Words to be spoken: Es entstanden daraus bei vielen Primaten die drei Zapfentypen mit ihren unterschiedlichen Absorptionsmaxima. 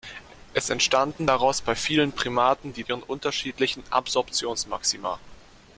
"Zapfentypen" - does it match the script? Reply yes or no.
no